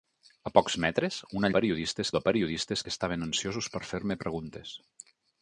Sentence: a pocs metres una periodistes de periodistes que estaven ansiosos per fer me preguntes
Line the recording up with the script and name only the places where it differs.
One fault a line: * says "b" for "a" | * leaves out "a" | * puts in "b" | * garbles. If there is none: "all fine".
all fine